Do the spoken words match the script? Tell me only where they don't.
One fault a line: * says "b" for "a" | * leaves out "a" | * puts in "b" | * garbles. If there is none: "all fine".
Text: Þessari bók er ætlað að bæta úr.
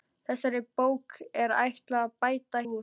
all fine